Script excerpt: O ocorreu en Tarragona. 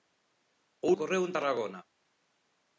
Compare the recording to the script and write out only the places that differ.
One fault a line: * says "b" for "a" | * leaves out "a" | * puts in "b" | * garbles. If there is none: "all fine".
all fine